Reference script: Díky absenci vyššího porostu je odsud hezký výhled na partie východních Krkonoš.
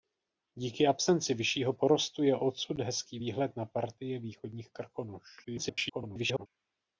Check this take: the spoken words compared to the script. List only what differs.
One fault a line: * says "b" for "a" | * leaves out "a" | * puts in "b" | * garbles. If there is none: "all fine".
* garbles